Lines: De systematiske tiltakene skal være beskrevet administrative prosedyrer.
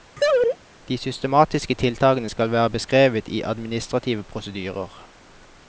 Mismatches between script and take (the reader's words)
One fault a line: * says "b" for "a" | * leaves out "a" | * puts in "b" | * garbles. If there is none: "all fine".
* puts in "i"